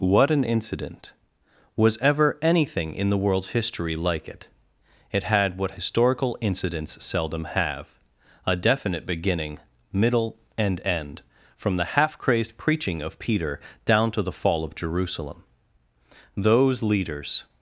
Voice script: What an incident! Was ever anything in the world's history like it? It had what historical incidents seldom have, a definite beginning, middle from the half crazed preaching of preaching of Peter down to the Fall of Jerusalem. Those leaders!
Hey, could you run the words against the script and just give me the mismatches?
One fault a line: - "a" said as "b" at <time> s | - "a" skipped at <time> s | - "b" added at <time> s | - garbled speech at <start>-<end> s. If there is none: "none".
- "and end" added at 10.6 s
- "preaching of" skipped at 13.2 s